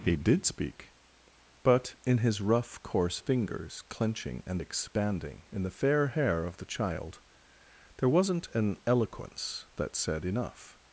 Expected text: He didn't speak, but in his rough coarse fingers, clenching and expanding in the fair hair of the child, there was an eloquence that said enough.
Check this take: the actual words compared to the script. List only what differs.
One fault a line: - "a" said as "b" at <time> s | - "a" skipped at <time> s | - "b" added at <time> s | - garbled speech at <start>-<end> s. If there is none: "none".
- "didn't" said as "did" at 0.1 s
- "was" said as "wasn't" at 8.1 s